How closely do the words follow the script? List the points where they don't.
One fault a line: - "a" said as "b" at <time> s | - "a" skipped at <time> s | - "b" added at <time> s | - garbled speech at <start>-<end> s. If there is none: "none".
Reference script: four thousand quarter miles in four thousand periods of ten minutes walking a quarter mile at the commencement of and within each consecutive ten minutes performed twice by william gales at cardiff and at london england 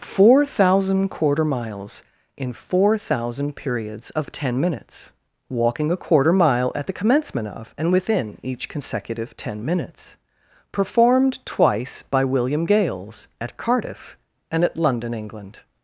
none